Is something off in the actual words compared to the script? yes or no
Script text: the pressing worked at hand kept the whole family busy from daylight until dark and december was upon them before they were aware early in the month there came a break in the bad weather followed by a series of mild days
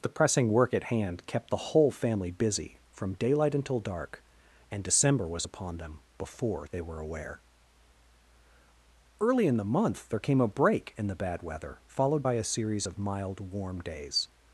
yes